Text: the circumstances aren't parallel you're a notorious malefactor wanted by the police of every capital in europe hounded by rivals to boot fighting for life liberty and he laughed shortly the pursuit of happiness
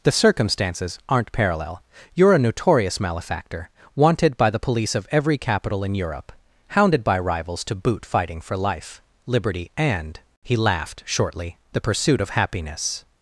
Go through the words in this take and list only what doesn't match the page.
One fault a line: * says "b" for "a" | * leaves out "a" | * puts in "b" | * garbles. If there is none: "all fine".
all fine